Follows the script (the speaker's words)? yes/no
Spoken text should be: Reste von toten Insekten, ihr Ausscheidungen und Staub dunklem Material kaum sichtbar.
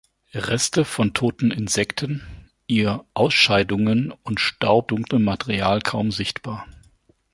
yes